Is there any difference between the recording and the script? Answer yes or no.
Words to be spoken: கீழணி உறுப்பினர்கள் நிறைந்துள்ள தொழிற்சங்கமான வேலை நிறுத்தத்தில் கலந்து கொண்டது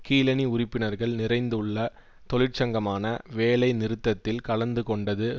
no